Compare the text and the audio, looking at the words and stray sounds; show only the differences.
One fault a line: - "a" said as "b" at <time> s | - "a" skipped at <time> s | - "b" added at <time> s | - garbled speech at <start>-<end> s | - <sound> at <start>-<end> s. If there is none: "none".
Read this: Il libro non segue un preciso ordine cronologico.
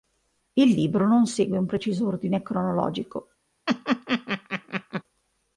- laugh at 3.7-5.0 s